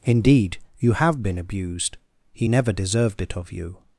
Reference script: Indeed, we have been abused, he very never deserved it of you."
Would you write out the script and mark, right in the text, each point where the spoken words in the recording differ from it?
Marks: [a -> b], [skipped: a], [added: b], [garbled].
Indeed, [we -> you] have been abused, he [skipped: very] never deserved it of you."